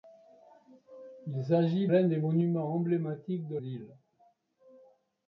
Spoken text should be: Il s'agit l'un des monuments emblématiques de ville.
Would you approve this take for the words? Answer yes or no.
yes